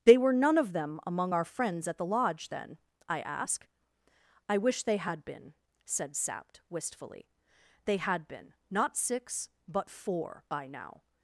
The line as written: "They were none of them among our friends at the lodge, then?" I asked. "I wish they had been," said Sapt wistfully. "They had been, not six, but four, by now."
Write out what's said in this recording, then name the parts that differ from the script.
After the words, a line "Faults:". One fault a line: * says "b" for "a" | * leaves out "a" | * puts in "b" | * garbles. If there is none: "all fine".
"They were none of them among our friends at the lodge, then?" I ask. "I wish they had been," said Sapt wistfully. "They had been, not six, but four, by now."
Faults:
* says "ask" for "asked"